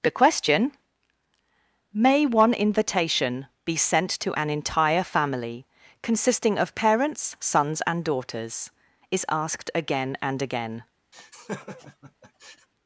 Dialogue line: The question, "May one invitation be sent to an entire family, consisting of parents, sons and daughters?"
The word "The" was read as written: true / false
true